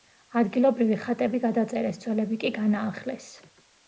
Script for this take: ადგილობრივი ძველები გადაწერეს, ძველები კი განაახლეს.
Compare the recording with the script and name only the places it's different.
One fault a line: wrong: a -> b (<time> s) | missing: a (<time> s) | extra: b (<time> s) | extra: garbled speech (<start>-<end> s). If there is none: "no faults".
wrong: ძველები -> ხატები (1.0 s)